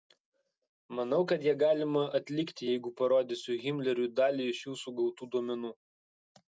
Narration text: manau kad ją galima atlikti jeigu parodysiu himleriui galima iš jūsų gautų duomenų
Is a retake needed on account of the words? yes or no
yes